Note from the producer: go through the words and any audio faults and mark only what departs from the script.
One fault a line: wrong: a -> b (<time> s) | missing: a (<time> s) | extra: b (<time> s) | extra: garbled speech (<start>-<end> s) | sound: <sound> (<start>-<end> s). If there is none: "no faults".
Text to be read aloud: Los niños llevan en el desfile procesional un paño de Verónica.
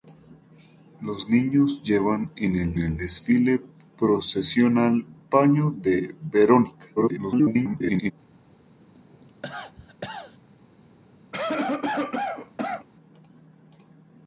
extra: el (2.8 s)
missing: un (5.0 s)
extra: garbled speech (7.0-8.1 s)
sound: cough (8.9-10.4 s)
sound: cough (11.3-12.9 s)